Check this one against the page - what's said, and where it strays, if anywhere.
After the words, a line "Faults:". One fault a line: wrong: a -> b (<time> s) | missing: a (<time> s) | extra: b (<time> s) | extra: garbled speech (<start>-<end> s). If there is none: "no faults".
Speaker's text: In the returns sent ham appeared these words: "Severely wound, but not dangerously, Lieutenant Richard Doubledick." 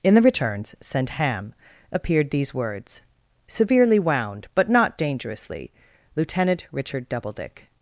In the returns sent ham appeared these words: "Severely wound, but not dangerously, Lieutenant Richard Doubledick."
Faults:
no faults